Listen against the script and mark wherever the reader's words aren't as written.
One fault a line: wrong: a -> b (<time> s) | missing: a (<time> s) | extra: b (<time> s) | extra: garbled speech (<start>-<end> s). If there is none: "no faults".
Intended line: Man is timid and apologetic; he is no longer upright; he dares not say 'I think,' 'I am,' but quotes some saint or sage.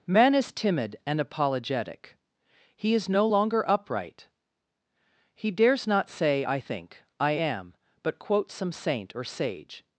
no faults